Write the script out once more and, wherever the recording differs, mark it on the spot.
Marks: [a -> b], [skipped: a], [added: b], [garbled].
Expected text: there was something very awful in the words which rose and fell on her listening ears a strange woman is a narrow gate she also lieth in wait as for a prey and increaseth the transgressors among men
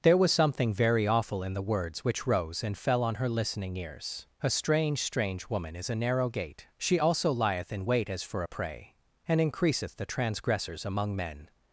there was something very awful in the words which rose and fell on her listening ears a strange [added: strange] woman is a narrow gate she also lieth in wait as for a prey and increaseth the transgressors among men